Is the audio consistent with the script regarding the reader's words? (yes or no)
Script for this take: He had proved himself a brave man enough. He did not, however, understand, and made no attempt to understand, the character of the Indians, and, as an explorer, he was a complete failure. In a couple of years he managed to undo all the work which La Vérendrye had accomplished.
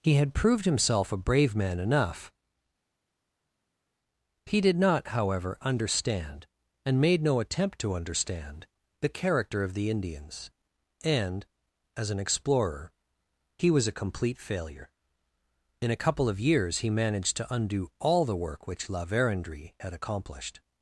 yes